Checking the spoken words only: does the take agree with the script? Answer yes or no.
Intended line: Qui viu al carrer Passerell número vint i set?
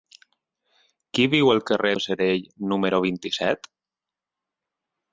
yes